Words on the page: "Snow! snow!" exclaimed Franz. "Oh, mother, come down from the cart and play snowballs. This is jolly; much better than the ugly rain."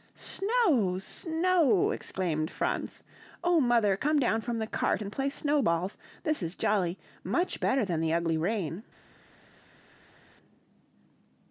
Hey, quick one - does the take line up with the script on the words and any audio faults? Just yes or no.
yes